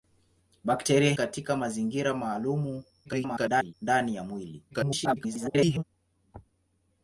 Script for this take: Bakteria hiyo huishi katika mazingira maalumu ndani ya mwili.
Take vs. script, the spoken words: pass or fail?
fail